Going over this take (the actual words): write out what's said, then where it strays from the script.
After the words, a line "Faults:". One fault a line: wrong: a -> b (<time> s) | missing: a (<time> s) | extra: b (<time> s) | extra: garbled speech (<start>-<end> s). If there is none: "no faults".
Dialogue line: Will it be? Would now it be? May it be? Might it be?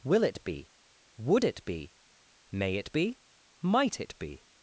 Will it be? Would it be? May it be? Might it be?
Faults:
missing: now (1.4 s)